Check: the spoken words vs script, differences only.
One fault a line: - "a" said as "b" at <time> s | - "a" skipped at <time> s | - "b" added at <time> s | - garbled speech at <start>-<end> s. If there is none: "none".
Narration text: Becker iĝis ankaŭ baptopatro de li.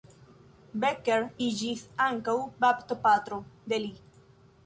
none